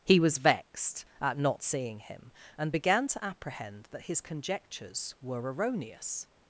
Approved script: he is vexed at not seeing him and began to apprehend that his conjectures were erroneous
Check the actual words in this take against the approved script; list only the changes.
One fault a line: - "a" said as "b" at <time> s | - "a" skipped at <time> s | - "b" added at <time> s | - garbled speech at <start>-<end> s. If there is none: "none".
- "is" said as "was" at 0.2 s